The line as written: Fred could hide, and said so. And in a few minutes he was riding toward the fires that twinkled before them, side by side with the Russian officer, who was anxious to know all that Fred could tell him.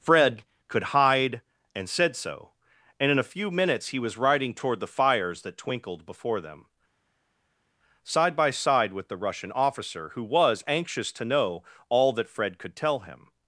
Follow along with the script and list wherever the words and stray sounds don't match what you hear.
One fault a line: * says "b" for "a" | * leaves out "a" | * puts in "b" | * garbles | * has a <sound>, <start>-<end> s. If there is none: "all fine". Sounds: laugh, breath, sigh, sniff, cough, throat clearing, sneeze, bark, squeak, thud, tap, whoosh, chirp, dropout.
all fine